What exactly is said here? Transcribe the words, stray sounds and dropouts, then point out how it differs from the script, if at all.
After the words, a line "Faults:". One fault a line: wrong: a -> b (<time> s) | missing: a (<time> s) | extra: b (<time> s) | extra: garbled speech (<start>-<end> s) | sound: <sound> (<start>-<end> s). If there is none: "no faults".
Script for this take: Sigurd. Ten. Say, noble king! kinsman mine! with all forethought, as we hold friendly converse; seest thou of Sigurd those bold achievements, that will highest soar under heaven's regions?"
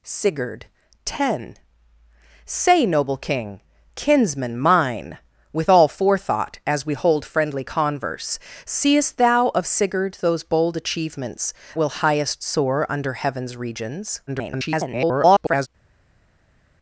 Sigurd. Ten. Say, noble king! kinsman mine! with all forethought, as we hold friendly converse; seest thou of Sigurd those bold achievements, will highest soar under heaven's regions?" [garbled]
Faults:
missing: that (11.5 s)
extra: garbled speech (14.3-15.7 s)